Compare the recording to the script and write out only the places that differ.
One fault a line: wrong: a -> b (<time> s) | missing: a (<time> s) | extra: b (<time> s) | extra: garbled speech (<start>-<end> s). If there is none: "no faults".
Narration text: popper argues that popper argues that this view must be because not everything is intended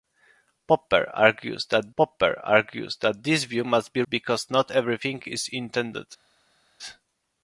no faults